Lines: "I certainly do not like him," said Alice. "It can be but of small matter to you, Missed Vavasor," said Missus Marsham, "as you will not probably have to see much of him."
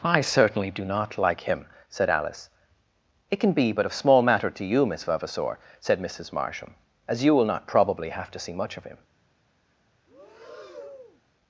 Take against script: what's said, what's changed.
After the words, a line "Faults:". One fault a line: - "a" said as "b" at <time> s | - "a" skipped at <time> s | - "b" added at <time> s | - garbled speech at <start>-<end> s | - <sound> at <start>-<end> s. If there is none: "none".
"I certainly do not like him," said Alice. "It can be but of small matter to you, Miss Vavasor," said Missus Marsham, "as you will not probably have to see much of him."
Faults:
- "Missed" said as "Miss" at 4.9 s
- breath at 10.1-11.2 s